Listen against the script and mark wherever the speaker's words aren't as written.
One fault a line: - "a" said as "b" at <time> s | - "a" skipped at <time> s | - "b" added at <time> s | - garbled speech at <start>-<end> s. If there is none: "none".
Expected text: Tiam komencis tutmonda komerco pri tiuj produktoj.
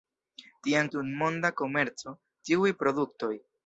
- "komencis" skipped at 0.9 s
- "pri" skipped at 2.2 s